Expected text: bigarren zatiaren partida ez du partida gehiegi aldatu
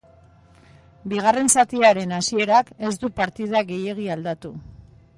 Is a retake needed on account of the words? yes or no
yes